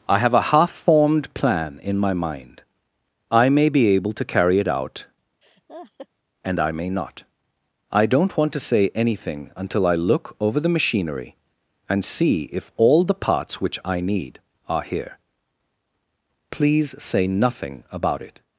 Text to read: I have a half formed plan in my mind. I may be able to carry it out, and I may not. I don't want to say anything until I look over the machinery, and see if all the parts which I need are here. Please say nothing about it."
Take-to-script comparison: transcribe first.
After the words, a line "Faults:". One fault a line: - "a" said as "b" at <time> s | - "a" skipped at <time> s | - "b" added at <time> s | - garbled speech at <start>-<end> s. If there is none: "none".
I have a half formed plan in my mind. I may be able to carry it out, and I may not. I don't want to say anything until I look over the machinery, and see if all the parts which I need are here. Please say nothing about it."
Faults:
none